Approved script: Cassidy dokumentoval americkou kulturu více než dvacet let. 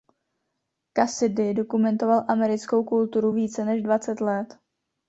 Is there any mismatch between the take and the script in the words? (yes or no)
no